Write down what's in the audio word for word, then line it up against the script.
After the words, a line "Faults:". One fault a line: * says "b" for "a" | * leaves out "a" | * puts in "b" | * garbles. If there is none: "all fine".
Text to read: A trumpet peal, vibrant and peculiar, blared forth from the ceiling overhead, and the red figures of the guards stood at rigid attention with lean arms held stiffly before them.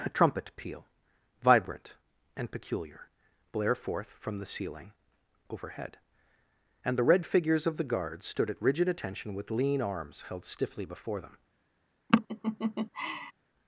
A trumpet peal, vibrant and peculiar, blare forth from the ceiling overhead, and the red figures of the guards stood at rigid attention with lean arms held stiffly before them.
Faults:
* says "blare" for "blared"